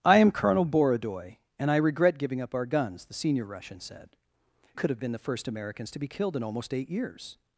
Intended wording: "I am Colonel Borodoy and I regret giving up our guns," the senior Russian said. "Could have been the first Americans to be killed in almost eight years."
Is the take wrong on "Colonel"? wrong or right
right